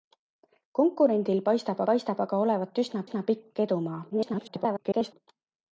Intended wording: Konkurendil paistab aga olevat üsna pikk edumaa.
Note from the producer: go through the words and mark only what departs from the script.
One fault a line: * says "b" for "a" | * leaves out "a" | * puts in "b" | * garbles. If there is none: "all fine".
* puts in "paistab"
* puts in "üsna"
* garbles